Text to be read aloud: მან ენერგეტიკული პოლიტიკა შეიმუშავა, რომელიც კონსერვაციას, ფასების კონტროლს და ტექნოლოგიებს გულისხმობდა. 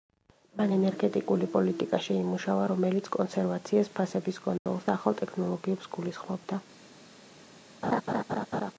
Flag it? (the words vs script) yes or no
yes